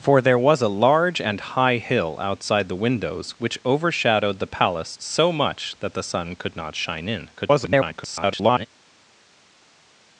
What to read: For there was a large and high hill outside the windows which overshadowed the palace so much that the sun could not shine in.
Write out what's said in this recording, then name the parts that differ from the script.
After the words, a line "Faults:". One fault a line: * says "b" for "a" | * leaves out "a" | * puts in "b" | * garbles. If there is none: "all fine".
For there was a large and high hill outside the windows which overshadowed the palace so much that the sun could not shine in. [garbled]
Faults:
* garbles